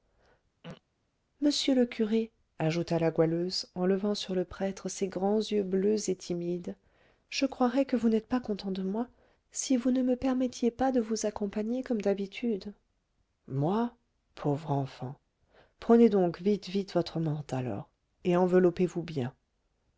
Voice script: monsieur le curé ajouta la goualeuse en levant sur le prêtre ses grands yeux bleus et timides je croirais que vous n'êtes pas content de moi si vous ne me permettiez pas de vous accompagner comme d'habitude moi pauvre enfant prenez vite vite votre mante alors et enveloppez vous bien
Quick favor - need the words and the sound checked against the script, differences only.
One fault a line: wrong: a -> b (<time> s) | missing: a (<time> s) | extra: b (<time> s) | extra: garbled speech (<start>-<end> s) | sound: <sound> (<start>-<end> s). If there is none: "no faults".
sound: throat clearing (0.6-0.8 s)
extra: donc (16.1 s)